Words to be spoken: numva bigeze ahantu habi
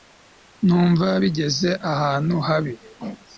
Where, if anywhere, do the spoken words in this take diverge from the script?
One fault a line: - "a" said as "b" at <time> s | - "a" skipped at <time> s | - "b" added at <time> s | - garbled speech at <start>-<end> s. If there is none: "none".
none